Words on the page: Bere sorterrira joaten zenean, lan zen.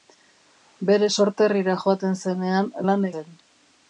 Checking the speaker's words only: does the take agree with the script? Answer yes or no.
yes